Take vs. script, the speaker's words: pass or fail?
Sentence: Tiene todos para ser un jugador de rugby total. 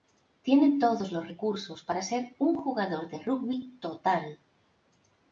fail